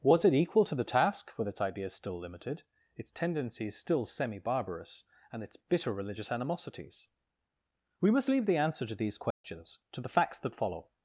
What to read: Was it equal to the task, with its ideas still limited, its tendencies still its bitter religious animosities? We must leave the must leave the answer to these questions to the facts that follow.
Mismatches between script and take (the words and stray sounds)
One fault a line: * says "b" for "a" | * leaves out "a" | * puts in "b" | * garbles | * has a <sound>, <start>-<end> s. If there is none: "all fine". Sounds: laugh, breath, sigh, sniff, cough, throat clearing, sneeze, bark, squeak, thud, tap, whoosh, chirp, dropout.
* puts in "semi barbarous and"
* leaves out "must leave the"
* has a dropout, 9.3-9.4 s